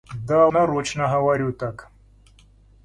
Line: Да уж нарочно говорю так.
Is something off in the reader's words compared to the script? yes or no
yes